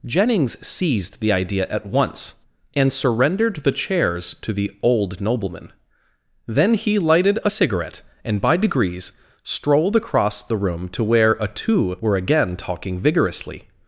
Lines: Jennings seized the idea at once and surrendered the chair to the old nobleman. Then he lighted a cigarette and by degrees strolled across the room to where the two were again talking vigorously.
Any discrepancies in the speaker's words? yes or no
yes